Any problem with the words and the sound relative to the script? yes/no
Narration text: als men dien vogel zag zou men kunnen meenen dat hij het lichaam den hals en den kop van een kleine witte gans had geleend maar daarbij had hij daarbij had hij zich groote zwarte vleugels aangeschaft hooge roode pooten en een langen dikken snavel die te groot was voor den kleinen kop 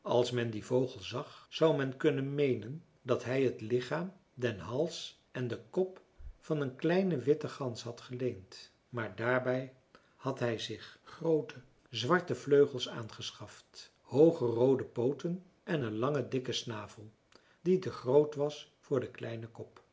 yes